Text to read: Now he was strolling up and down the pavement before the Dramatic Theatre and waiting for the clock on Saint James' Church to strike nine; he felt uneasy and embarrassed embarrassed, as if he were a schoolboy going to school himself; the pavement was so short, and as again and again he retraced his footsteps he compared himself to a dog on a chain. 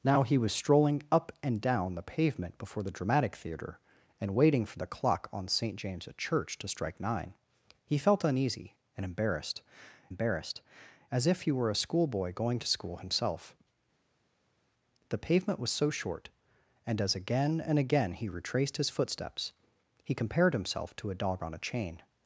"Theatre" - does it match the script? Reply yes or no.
yes